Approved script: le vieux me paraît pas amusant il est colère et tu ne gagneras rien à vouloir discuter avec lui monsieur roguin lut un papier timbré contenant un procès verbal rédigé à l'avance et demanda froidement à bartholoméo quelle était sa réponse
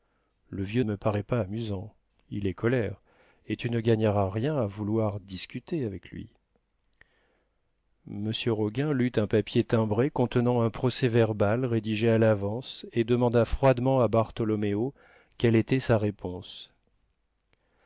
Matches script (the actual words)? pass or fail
pass